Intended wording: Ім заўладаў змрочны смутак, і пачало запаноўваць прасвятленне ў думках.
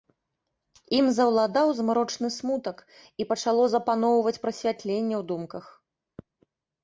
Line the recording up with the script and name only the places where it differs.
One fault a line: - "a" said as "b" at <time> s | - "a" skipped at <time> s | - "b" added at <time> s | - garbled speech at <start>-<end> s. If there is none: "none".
none